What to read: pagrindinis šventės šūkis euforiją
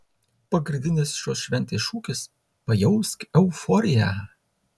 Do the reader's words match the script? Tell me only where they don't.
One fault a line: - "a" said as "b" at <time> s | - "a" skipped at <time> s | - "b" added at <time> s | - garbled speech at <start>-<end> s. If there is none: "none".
- "šios" added at 1.2 s
- "pajausk" added at 2.7 s